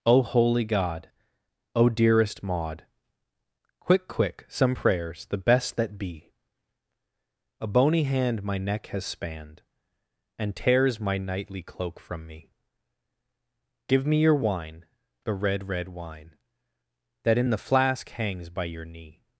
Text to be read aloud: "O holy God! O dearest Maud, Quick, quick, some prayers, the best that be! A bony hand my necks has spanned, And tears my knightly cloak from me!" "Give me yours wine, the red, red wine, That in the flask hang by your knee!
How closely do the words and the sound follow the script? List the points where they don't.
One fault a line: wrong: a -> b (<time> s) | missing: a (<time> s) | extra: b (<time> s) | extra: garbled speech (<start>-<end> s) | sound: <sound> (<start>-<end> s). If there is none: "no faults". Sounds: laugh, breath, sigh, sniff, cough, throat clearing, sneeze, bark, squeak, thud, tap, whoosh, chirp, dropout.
wrong: necks -> neck (8.6 s)
wrong: yours -> your (14.2 s)
wrong: hang -> hangs (18.1 s)